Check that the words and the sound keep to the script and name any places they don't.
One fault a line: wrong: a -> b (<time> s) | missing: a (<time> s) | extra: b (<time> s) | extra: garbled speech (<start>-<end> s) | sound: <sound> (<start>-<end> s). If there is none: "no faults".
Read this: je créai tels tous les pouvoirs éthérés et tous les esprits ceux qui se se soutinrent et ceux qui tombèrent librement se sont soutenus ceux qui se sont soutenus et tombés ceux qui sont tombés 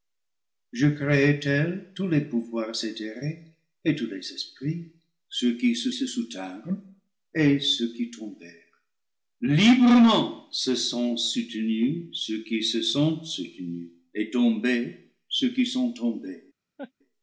sound: laugh (16.8-16.9 s)